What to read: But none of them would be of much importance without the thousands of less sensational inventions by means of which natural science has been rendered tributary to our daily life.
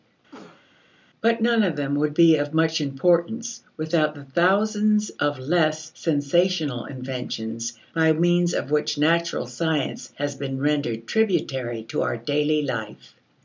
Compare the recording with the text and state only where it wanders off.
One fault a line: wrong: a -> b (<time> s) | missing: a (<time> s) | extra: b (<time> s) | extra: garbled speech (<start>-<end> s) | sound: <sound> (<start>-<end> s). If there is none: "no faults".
sound: cough (0.3-0.7 s)